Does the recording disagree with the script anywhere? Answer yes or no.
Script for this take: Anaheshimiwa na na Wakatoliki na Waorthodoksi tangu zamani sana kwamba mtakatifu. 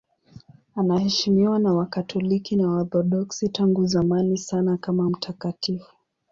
yes